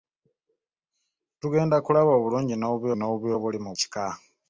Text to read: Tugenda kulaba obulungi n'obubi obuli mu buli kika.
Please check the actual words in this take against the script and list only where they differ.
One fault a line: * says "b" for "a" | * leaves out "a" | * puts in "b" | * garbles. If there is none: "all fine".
* puts in "n'obubi"
* leaves out "buli"